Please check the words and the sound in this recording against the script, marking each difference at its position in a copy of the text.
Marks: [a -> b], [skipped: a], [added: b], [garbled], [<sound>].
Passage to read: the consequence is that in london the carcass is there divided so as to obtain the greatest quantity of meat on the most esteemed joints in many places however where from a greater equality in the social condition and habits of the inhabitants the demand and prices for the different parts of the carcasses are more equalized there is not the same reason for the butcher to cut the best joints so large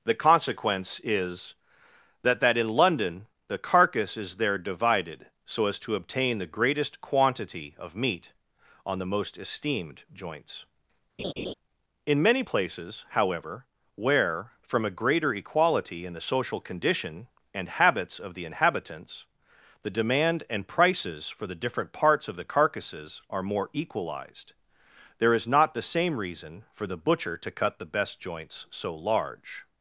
the consequence is that [added: that] in london the carcass is there divided so as to obtain the greatest quantity of meat on the most esteemed joints [laugh] in many places however where from a greater equality in the social condition and habits of the inhabitants the demand and prices for the different parts of the carcasses are more equalized there is not the same reason for the butcher to cut the best joints so large